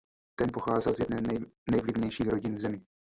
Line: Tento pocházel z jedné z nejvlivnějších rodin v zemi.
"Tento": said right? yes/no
no